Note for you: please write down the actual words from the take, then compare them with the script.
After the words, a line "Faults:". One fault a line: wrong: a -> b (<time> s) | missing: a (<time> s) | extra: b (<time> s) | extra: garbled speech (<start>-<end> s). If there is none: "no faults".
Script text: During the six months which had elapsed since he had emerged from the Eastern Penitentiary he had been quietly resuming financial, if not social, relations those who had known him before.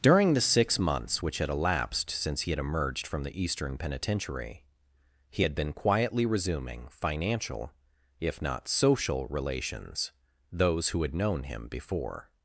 During the six months which had elapsed since he had emerged from the Eastern Penitentiary he had been quietly resuming financial, if not social, relations those who had known him before.
Faults:
no faults